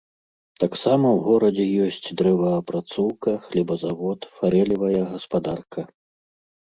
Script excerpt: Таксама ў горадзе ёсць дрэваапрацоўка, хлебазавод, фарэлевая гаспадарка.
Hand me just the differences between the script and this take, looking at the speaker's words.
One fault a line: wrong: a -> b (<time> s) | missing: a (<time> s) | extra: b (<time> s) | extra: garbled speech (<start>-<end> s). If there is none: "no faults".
no faults